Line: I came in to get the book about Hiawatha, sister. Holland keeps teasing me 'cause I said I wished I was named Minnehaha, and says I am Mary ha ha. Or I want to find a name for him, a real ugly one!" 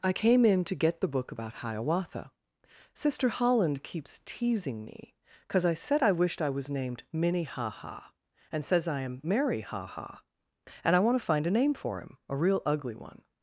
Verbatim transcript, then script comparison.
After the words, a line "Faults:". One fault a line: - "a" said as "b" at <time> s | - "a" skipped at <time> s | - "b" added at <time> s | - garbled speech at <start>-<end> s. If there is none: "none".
I came in to get the book about Hiawatha, sister. Holland keeps teasing me 'cause I said I wished I was named Minnehaha, and says I am Mary ha ha. And I want to find a name for him, a real ugly one!"
Faults:
- "Or" said as "And" at 10.8 s